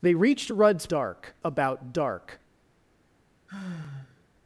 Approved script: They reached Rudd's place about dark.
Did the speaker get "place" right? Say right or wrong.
wrong